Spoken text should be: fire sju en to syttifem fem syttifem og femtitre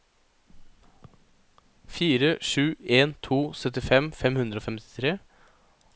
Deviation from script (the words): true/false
true